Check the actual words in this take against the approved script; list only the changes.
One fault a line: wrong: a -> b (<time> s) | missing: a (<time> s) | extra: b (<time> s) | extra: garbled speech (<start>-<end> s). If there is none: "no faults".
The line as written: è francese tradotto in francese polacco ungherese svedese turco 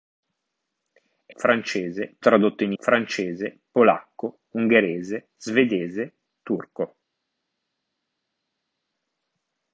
no faults